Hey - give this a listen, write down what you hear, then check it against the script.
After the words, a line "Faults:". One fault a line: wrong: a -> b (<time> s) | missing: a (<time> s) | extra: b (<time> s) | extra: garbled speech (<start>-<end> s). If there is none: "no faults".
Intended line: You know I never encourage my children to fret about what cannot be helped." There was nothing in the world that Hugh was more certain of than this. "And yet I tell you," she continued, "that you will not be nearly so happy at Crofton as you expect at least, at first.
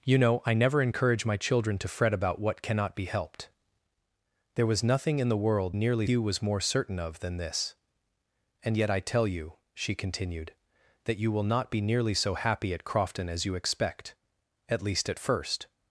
You know I never encourage my children to fret about what cannot be helped." There was nothing in the world nearly Hugh was more certain of than this. "And yet I tell you," she continued, "that you will not be nearly so happy at Crofton as you expect at least, at first.
Faults:
wrong: that -> nearly (5.7 s)